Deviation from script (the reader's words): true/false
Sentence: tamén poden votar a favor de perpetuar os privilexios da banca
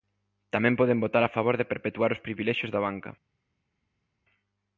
false